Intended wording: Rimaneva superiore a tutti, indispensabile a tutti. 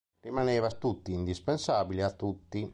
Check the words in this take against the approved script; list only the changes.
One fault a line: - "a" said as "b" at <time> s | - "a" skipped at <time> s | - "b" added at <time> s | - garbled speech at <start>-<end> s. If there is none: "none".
- "superiore" skipped at 0.7 s